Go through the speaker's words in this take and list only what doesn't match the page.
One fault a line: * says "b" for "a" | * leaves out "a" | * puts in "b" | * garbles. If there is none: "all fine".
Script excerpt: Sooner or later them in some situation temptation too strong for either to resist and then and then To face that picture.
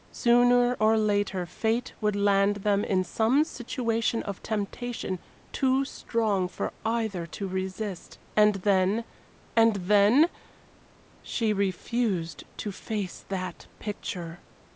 * puts in "fate would land"
* puts in "of"
* puts in "She refused"